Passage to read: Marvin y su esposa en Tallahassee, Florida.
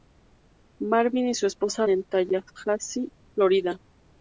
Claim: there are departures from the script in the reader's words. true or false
false